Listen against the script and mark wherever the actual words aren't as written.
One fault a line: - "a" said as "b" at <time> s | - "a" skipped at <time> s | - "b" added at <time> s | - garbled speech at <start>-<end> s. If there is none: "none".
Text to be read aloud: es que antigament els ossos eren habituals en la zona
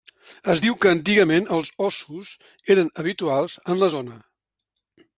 - "diu" added at 0.6 s